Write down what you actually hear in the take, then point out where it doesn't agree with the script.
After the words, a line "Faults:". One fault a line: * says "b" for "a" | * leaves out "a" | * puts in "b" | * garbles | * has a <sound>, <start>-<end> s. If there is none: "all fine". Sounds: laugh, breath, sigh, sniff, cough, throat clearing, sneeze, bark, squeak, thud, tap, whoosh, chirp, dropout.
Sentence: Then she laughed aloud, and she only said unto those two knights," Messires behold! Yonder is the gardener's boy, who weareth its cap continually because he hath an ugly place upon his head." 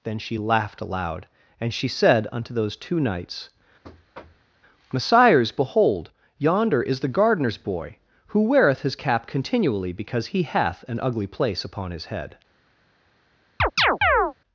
Then she laughed aloud, and she said unto those two knights," Messires behold! Yonder is the gardener's boy, who weareth his cap continually because he hath an ugly place upon his head."
Faults:
* leaves out "only"
* has a thud, 3.8-4.5 s
* says "his" for "its"
* has a chirp, 13.6-14.3 s